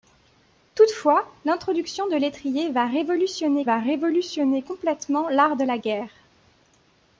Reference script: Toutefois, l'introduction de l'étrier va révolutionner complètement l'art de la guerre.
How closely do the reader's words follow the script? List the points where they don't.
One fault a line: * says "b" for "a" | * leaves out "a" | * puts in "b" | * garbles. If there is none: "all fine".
* puts in "va révolutionner"